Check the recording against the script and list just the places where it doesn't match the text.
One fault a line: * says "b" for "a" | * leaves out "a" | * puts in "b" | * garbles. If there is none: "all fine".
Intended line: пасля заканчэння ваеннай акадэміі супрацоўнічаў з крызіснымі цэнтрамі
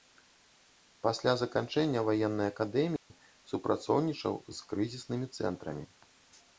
all fine